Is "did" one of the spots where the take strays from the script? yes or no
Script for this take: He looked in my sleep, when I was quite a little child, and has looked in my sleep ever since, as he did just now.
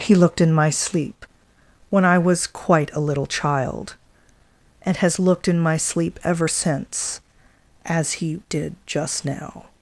no